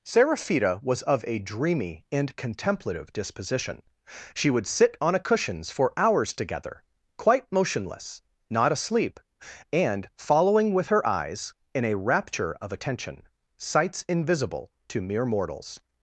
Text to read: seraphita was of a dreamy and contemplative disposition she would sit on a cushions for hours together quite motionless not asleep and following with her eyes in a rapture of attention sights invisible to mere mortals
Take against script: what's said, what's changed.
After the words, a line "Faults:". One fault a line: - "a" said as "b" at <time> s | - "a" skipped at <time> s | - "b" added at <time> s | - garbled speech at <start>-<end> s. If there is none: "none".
seraphita was of a dreamy and contemplative disposition she would sit on a cushions for hours together quite motionless not asleep and following with her eyes in a rapture of attention sights invisible to mere mortals
Faults:
none